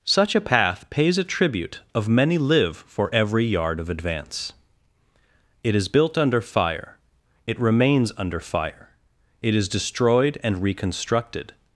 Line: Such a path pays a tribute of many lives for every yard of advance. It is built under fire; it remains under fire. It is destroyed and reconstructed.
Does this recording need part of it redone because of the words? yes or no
yes